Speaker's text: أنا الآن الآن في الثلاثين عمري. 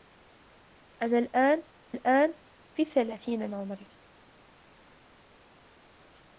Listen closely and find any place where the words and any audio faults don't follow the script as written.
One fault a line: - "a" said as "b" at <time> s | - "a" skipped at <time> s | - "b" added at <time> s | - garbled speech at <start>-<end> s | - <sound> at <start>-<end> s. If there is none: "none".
none